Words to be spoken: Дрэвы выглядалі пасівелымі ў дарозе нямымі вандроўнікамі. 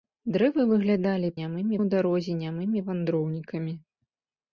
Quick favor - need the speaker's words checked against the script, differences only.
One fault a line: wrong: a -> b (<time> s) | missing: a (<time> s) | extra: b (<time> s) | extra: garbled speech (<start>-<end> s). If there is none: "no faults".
wrong: пасівелымі -> нямымі (1.4 s)